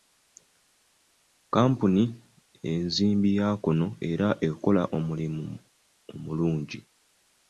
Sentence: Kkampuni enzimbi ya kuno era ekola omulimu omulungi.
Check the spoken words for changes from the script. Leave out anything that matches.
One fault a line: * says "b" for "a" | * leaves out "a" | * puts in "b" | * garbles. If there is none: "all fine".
all fine